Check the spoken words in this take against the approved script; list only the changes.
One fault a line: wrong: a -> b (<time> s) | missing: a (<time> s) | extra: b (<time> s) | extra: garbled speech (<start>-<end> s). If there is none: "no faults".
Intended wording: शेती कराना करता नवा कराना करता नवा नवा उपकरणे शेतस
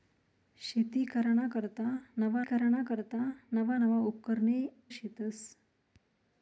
no faults